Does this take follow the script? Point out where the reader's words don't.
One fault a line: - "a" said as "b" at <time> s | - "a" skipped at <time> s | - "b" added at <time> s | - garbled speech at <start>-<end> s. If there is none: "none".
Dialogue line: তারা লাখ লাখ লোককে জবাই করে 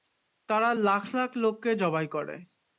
none